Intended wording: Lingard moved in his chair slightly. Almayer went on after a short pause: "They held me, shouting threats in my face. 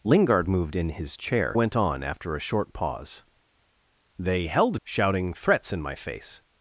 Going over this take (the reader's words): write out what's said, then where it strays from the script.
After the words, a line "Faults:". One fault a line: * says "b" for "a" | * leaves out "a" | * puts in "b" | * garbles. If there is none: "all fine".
Lingard moved in his chair went on after a short pause: "They held shouting threats in my face.
Faults:
* leaves out "slightly Almayer"
* leaves out "me"